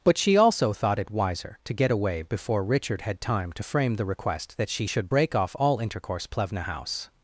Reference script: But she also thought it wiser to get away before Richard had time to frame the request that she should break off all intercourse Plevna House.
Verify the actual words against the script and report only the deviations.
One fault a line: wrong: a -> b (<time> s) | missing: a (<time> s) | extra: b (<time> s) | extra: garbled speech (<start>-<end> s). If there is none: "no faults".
no faults